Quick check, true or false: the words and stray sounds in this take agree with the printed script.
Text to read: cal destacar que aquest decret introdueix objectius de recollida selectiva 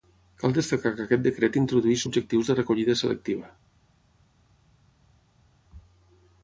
true